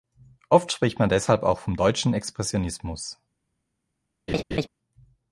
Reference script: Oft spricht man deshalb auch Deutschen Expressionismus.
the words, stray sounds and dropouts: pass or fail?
fail